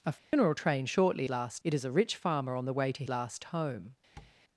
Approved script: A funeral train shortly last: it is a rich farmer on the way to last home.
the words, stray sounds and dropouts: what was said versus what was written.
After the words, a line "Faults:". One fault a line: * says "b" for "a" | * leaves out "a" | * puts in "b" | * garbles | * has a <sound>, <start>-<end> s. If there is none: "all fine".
A funeral train shortly last: it is a rich farmer on the way to last home.
Faults:
* has a dropout, 0.2-0.3 s
* has a tap, 4.2-4.4 s